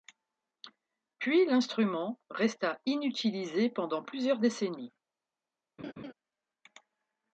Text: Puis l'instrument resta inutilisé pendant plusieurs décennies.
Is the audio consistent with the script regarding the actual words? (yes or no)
yes